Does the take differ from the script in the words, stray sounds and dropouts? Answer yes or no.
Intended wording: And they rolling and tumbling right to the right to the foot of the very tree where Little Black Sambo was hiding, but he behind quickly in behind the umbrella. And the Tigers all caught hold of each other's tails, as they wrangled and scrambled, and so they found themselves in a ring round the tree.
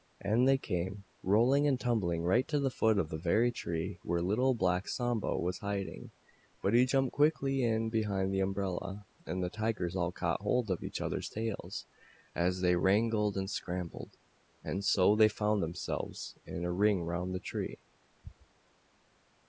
yes